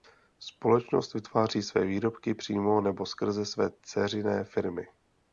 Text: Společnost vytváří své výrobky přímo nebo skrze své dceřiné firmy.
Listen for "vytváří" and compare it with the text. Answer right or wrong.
right